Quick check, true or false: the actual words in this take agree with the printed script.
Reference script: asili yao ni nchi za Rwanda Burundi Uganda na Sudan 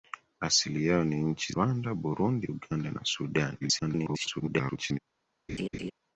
false